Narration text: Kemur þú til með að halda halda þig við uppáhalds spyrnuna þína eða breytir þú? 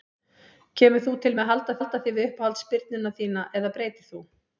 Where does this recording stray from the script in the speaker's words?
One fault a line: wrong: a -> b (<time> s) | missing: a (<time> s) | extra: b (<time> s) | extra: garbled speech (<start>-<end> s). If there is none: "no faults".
no faults